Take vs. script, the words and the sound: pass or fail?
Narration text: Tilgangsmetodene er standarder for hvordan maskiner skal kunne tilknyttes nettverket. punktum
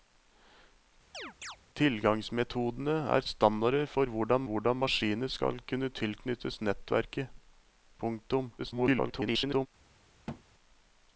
fail